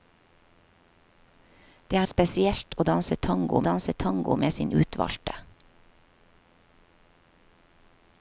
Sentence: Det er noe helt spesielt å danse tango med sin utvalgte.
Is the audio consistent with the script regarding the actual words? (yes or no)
no